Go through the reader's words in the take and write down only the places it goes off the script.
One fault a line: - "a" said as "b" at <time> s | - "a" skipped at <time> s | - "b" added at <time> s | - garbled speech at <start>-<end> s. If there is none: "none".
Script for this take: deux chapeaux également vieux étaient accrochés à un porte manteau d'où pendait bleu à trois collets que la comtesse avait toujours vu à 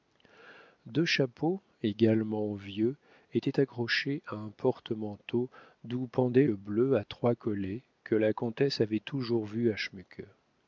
none